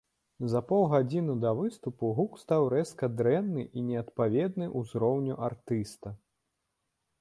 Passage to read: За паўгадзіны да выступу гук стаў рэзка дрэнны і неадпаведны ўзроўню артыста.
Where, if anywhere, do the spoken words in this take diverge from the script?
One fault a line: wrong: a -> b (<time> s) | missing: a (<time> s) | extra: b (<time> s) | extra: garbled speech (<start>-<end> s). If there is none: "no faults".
no faults